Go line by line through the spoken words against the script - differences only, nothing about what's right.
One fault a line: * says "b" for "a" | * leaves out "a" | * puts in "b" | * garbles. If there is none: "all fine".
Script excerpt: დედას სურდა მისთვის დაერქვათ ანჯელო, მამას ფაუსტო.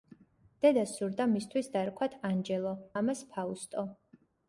all fine